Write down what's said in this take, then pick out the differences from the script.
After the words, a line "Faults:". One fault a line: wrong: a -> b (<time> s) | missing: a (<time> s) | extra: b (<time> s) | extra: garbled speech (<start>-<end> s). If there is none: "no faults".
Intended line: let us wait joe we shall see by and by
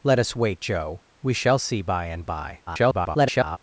let us wait joe we shall see by and by [garbled]
Faults:
extra: garbled speech (2.7-3.6 s)